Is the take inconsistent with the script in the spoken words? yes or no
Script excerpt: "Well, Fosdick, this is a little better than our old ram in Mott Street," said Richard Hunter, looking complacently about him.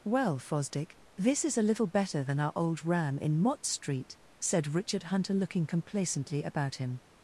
no